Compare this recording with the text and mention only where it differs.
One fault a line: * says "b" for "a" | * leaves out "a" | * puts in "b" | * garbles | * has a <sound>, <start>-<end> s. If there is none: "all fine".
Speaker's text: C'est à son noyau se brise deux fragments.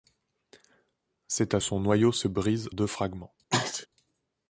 * has a sneeze, 3.5-3.9 s